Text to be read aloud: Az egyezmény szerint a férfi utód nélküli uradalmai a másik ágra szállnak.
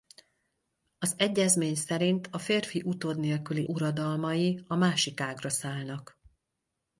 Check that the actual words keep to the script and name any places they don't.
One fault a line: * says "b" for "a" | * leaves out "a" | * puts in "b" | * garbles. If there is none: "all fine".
all fine